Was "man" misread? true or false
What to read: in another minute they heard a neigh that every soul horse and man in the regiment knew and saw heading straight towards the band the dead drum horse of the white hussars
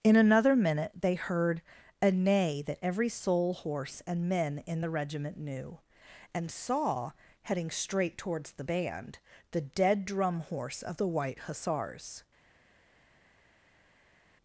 true